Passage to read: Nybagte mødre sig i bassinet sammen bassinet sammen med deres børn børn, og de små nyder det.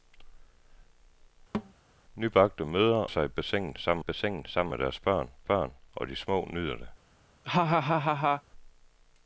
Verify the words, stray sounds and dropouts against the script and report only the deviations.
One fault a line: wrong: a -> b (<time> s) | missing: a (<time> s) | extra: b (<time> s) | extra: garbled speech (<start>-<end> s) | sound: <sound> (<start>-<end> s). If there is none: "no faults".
sound: thud (1.5-1.7 s)
sound: laugh (7.4-8.4 s)